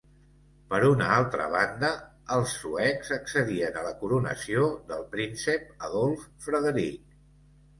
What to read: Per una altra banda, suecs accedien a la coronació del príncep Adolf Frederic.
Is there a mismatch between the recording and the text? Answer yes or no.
yes